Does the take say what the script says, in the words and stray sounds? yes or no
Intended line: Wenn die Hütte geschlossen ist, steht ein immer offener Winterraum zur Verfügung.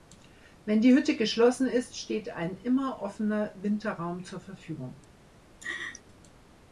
no